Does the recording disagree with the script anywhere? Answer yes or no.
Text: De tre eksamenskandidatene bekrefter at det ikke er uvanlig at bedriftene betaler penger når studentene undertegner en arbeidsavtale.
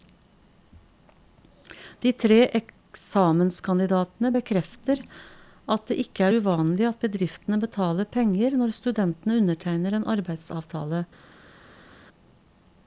no